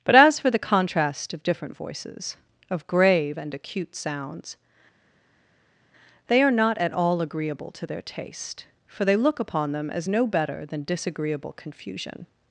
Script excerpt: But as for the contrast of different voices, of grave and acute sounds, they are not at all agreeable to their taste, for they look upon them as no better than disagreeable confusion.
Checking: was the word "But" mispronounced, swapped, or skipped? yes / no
no